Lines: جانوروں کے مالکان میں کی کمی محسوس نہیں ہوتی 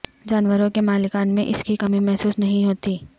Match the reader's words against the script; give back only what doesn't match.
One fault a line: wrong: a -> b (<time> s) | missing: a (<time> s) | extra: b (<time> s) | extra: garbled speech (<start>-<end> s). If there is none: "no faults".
extra: اس (1.4 s)